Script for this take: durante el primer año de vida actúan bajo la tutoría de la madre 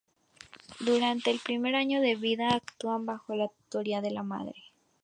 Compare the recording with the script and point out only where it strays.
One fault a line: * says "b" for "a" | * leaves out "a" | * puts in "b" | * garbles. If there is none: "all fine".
all fine